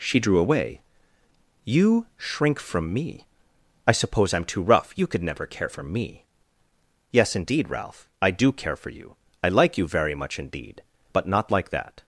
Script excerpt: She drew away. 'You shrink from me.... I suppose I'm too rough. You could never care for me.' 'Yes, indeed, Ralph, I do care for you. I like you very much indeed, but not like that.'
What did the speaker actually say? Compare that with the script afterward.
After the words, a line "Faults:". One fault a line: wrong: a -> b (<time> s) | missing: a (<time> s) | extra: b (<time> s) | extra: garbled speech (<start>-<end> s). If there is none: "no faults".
She drew away. 'You shrink from me.... I suppose I'm too rough. You could never care for me.' 'Yes, indeed, Ralph, I do care for you. I like you very much indeed, but not like that.'
Faults:
no faults